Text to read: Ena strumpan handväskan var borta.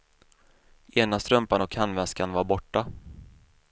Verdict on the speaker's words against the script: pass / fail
fail